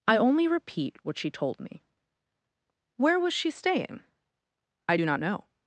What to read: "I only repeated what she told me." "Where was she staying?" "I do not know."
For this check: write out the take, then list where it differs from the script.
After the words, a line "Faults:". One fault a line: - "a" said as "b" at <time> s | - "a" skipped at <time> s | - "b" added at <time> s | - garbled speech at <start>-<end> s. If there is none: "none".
"I only repeat what she told me." "Where was she staying?" "I do not know."
Faults:
- "repeated" said as "repeat" at 0.5 s